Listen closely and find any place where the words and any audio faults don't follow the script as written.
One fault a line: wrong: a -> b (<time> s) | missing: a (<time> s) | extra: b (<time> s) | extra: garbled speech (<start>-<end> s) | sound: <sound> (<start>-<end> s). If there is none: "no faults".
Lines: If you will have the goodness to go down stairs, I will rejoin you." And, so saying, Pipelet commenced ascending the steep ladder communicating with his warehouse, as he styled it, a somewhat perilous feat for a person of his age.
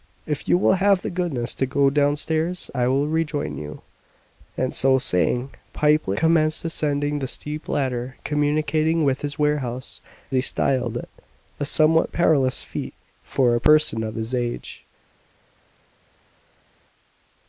missing: as (10.0 s)